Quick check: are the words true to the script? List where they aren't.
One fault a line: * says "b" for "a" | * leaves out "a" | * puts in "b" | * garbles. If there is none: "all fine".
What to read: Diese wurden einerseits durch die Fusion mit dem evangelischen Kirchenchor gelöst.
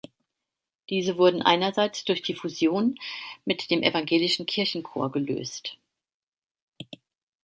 all fine